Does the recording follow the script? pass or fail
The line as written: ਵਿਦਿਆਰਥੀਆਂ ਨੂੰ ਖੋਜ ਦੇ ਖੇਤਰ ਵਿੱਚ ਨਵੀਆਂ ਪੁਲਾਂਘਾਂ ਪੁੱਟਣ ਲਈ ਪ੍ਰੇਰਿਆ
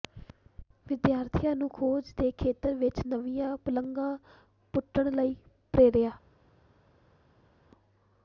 pass